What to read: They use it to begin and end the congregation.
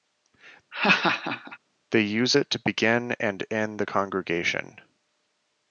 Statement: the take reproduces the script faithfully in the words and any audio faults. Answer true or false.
false